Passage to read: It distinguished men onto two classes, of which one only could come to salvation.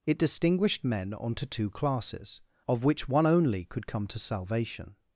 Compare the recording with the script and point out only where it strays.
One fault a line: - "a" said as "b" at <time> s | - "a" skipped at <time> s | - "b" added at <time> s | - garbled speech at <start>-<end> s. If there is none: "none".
none